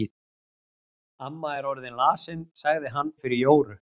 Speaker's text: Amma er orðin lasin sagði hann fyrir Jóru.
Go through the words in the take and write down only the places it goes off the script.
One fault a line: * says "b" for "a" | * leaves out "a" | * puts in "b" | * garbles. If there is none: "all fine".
all fine